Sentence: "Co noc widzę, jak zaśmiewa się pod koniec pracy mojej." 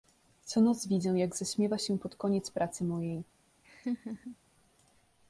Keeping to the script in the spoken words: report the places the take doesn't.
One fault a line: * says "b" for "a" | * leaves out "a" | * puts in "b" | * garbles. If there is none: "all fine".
all fine